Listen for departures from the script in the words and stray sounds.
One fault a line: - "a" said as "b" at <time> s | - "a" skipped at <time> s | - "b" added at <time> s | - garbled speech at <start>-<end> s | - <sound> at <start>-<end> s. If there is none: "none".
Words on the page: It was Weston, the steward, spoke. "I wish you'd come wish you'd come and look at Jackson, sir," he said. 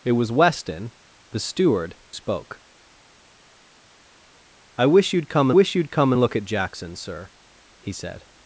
none